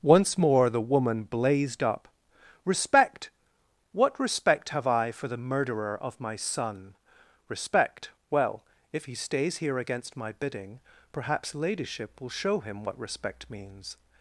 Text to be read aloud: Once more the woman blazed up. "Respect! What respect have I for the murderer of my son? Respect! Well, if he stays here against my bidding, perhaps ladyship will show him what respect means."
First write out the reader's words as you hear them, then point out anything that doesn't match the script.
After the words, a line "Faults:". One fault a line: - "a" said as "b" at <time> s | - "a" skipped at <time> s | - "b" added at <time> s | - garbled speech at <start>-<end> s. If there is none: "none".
Once more the woman blazed up. "Respect! What respect have I for the murderer of my son? Respect! Well, if he stays here against my bidding, perhaps ladyship will show him what respect means."
Faults:
none